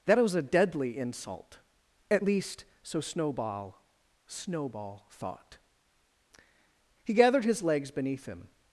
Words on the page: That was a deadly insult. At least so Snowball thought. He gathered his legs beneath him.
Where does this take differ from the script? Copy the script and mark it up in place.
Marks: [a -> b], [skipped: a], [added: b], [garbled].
That was a deadly insult. At least so Snowball [added: Snowball] thought. He gathered his legs beneath him.